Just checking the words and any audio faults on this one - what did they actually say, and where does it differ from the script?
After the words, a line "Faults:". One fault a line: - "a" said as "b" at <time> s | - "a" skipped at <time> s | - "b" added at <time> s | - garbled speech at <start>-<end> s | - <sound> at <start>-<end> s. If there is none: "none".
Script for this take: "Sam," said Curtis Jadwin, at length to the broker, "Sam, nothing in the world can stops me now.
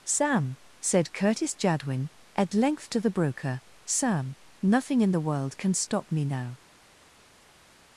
"Sam," said Curtis Jadwin, at length to the broker, "Sam, nothing in the world can stop me now.
Faults:
- "stops" said as "stop" at 5.7 s